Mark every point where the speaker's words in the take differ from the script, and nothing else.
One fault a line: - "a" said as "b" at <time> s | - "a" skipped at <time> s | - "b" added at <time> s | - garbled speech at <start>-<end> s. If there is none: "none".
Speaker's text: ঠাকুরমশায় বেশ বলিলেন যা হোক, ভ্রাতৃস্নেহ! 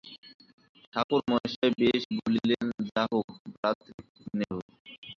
none